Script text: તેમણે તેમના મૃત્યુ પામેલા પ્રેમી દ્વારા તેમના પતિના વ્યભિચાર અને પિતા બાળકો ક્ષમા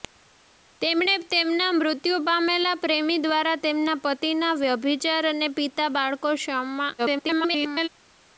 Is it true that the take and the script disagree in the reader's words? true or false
true